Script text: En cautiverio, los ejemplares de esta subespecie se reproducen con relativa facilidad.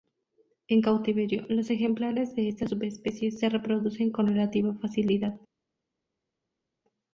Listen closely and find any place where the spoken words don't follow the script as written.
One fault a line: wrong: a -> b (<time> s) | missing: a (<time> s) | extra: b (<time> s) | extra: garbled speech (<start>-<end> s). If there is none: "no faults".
no faults